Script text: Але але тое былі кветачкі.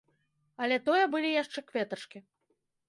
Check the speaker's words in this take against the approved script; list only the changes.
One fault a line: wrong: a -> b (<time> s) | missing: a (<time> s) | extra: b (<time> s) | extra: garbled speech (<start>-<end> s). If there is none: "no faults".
missing: але (0.8 s)
extra: яшчэ (1.4 s)